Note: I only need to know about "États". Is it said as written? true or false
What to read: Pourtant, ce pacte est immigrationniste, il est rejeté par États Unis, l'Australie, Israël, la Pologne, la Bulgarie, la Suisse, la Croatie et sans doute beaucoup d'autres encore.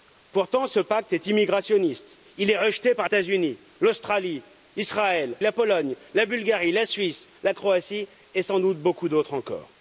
true